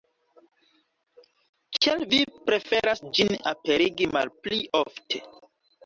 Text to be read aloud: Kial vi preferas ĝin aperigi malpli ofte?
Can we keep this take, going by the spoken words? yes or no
yes